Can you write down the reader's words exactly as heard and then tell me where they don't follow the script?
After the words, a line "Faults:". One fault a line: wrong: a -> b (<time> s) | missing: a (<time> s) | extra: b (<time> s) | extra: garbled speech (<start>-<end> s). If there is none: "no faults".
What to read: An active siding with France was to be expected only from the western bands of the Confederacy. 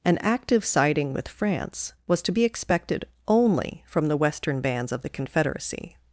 An active siding with France was to be expected only from the western bands of the Confederacy.
Faults:
no faults